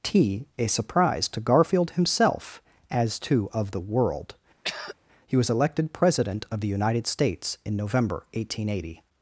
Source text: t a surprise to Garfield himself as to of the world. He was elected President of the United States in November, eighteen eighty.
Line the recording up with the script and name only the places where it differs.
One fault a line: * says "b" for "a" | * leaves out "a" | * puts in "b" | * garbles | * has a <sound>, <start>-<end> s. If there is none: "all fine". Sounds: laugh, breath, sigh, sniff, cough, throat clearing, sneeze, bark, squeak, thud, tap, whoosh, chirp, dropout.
* has a throat clearing, 4.6-4.9 s